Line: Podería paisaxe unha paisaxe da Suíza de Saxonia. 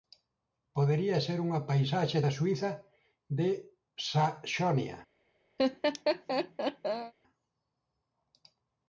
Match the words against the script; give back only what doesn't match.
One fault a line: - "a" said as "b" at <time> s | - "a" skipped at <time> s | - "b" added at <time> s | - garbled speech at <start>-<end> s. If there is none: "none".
- "paisaxe" said as "ser" at 1.3 s